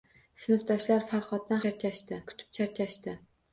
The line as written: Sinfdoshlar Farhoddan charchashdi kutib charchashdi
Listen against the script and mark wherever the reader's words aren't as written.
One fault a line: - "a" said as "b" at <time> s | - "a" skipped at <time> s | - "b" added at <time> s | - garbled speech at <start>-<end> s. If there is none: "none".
none